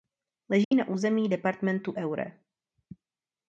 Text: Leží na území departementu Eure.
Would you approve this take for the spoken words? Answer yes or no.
yes